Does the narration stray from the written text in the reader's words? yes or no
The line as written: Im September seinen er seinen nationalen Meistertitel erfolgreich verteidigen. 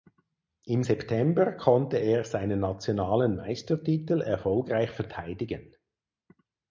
yes